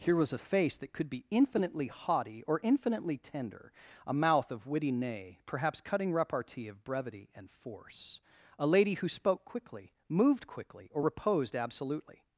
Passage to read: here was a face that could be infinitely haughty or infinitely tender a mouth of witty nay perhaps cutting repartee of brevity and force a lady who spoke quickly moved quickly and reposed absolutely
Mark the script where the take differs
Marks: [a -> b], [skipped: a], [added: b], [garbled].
here was a face that could be infinitely haughty or infinitely tender a mouth of witty nay perhaps cutting repartee of brevity and force a lady who spoke quickly moved quickly [and -> or] reposed absolutely